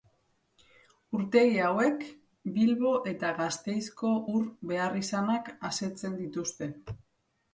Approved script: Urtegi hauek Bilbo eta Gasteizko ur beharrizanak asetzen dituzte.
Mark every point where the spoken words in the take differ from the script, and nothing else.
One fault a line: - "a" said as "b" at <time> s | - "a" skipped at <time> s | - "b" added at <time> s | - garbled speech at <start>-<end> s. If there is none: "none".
none